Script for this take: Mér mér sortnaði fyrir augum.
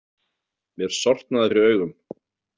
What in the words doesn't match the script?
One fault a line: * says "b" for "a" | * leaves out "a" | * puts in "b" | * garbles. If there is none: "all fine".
* leaves out "mér"